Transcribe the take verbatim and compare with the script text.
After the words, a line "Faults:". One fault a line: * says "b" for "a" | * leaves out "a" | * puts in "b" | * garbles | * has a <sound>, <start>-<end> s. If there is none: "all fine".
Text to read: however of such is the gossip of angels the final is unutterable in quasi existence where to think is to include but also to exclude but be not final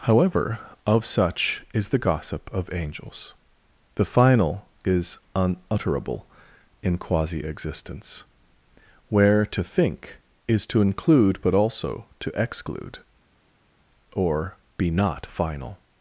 however of such is the gossip of angels the final is unutterable in quasi existence where to think is to include but also to exclude or be not final
Faults:
* says "or" for "but"